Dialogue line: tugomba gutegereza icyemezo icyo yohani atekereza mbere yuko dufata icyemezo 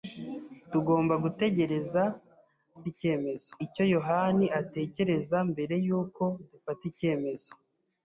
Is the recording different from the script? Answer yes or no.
no